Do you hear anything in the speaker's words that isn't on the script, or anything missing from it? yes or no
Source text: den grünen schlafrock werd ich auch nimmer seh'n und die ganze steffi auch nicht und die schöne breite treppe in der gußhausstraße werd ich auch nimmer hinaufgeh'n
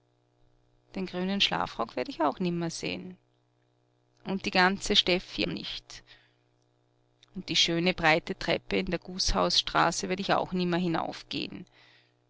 yes